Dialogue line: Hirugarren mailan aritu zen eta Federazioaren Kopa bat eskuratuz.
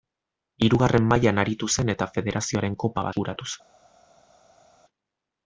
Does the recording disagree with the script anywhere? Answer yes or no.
yes